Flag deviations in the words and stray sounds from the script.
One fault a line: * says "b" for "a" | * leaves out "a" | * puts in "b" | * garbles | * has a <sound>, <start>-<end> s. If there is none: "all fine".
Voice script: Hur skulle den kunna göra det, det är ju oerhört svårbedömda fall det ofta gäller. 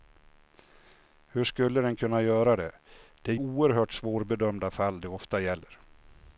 * leaves out "ju"